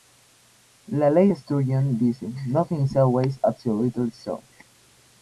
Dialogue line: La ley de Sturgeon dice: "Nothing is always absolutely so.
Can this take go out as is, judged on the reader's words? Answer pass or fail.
pass